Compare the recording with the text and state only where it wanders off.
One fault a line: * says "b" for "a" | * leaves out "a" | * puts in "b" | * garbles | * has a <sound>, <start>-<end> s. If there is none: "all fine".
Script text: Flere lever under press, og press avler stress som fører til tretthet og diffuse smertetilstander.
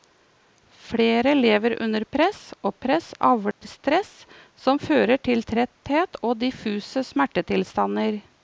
* has a dropout, 3.5-3.6 s